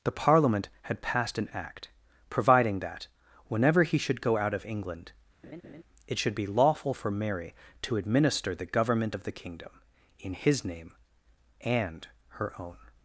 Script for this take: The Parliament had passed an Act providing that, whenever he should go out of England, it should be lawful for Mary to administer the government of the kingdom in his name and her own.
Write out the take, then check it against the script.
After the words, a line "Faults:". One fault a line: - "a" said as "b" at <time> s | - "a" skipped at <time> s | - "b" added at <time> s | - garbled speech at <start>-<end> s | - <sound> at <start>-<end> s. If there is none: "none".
The Parliament had passed an Act providing that, whenever he should go out of England, it should be lawful for Mary to administer the government of the kingdom in his name and her own.
Faults:
- laugh at 5.4-5.8 s